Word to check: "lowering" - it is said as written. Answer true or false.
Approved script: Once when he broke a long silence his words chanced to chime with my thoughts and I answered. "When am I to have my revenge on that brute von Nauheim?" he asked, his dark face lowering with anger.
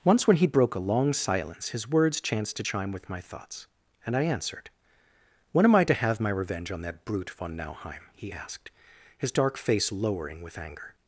true